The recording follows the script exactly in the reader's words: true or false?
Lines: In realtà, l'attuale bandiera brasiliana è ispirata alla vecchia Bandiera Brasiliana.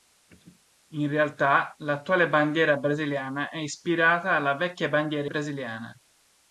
true